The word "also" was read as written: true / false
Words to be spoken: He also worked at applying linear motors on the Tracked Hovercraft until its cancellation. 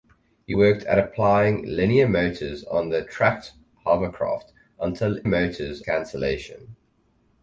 false